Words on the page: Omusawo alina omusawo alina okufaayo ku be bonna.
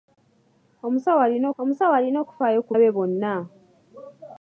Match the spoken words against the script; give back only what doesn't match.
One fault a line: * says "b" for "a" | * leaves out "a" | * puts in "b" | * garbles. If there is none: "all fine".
all fine